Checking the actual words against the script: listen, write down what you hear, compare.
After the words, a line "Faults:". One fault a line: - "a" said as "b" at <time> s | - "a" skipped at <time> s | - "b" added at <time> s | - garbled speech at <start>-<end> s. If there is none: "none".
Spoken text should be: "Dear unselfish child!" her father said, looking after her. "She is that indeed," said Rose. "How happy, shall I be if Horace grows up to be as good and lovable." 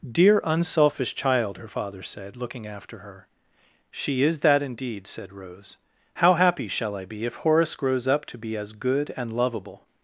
"Dear unselfish child!" her father said, looking after her. "She is that indeed," said Rose. "How happy, shall I be if Horace grows up to be as good and lovable."
Faults:
none